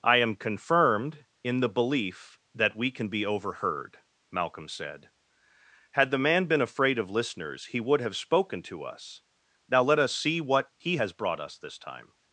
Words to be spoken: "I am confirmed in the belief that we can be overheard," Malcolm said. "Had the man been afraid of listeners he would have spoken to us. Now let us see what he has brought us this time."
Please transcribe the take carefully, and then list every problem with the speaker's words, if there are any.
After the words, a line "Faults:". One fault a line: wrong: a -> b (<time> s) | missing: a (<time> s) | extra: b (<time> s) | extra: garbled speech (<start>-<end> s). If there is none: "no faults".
"I am confirmed in the belief that we can be overheard," Malcolm said. "Had the man been afraid of listeners he would have spoken to us. Now let us see what he has brought us this time."
Faults:
no faults